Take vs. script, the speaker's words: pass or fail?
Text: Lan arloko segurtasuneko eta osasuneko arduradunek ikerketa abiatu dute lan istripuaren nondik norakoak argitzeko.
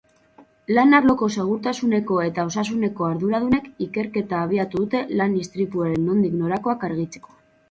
pass